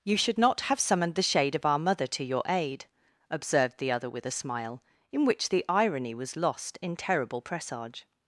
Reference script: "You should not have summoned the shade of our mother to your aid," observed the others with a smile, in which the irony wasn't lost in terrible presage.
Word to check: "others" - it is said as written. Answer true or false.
false